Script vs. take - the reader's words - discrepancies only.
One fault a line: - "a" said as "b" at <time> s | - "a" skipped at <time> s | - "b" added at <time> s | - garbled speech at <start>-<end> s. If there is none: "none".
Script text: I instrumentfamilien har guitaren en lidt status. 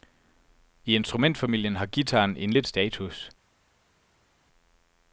none